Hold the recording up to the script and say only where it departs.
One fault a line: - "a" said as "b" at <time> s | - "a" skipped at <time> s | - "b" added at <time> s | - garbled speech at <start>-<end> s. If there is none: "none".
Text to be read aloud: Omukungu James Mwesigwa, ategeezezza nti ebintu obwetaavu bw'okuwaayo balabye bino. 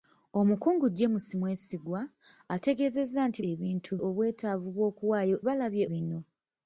none